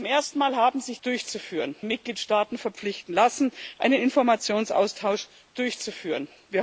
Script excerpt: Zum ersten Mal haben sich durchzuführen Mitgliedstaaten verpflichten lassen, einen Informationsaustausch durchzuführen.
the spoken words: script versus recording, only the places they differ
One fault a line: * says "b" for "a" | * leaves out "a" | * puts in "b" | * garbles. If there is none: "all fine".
all fine